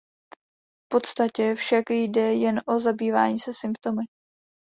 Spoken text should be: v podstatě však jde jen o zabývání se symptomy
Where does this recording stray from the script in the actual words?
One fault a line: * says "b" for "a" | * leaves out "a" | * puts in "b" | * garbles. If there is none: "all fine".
all fine